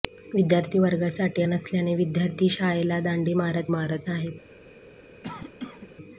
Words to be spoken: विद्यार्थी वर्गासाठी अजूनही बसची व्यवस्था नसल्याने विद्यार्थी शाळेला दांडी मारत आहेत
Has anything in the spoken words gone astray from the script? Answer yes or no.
yes